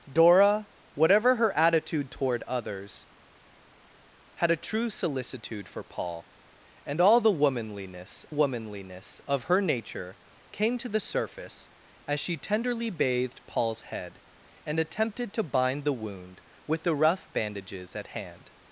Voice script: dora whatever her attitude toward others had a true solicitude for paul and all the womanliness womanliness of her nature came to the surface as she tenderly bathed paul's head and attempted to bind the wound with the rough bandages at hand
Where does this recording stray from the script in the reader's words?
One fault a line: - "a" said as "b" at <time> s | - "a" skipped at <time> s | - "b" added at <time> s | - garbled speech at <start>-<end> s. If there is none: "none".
none